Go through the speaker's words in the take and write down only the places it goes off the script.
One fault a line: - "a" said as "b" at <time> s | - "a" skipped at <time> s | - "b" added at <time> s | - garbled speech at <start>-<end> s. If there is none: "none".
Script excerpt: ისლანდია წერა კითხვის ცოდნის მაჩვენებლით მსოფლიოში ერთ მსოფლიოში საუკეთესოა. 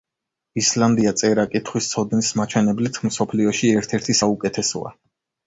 - "მსოფლიოში" said as "ერთი" at 4.0 s